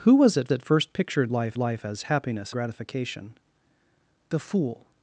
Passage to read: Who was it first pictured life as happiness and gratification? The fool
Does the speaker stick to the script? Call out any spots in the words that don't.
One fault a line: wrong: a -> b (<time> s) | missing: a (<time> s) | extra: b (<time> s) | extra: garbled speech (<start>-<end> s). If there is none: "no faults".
extra: it (0.5 s)
extra: life (1.6 s)
missing: and (2.5 s)